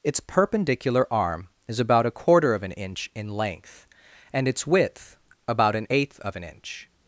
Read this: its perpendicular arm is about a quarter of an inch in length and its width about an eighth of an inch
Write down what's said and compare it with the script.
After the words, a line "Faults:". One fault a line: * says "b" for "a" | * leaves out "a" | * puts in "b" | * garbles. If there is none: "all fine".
its perpendicular arm is about a quarter of an inch in length and its width about an eighth of an inch
Faults:
all fine